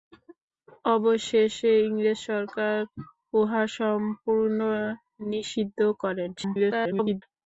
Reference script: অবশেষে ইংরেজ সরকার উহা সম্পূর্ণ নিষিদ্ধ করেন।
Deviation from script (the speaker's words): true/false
true